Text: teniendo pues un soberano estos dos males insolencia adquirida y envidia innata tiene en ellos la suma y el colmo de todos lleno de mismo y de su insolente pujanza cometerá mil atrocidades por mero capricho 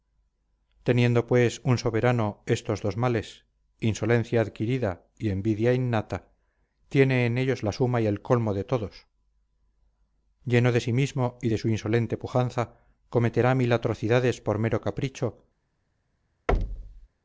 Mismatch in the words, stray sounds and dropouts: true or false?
true